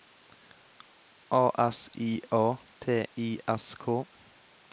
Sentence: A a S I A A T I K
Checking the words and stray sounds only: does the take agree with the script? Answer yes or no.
no